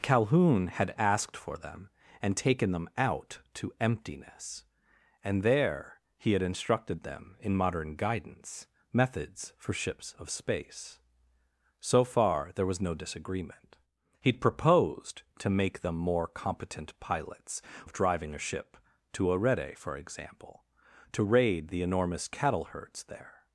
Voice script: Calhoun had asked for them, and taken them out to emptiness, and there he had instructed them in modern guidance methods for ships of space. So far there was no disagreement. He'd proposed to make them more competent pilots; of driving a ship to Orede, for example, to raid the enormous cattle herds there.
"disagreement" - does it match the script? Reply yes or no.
yes